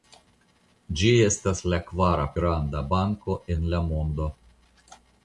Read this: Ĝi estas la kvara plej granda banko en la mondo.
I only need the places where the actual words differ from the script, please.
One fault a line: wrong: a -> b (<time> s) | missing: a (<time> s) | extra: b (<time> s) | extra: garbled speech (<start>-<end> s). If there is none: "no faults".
missing: plej (2.2 s)